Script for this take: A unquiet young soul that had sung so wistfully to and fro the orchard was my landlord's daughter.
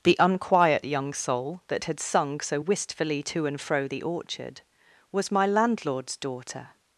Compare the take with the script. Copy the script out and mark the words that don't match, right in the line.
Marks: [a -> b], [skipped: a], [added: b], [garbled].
[A -> The] unquiet young soul that had sung so wistfully to and fro the orchard was my landlord's daughter.